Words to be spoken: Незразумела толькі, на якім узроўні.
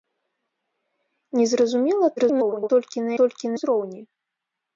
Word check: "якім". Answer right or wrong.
wrong